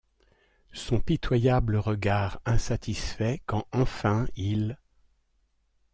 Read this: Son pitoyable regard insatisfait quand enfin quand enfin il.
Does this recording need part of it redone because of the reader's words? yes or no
yes